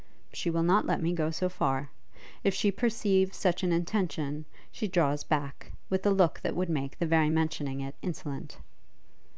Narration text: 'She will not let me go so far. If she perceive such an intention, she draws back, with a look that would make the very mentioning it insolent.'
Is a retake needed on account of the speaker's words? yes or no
no